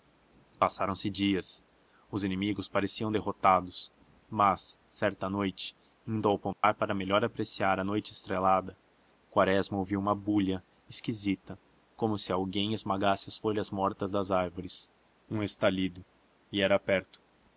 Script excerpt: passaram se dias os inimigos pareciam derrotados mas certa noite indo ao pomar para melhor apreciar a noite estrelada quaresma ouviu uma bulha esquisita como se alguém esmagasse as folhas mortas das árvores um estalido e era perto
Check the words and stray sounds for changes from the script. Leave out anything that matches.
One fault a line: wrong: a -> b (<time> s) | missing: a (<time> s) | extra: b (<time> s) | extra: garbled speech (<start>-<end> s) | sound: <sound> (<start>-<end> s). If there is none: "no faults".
sound: dropout (6.5-6.6 s)